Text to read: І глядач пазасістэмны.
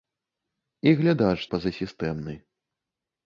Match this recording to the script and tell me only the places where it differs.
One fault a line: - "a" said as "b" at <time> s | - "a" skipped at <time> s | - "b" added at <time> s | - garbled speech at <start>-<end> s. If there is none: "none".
none